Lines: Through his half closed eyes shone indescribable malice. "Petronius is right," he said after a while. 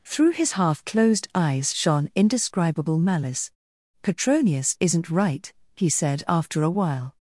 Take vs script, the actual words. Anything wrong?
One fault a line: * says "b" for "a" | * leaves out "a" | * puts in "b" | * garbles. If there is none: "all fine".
* says "isn't" for "is"